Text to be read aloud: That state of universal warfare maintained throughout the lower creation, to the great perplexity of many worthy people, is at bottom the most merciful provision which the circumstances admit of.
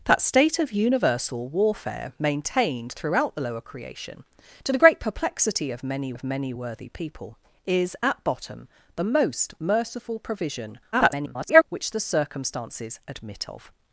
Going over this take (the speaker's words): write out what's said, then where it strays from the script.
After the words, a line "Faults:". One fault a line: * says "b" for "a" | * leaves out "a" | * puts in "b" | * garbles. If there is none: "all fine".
That state of universal warfare maintained throughout the lower creation, to the great perplexity of many of many worthy people, is at bottom the most merciful provision [garbled] which the circumstances admit of.
Faults:
* puts in "of many"
* garbles